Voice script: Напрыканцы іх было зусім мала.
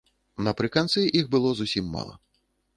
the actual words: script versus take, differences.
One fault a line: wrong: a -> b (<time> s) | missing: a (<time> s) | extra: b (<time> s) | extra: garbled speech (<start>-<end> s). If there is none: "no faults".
no faults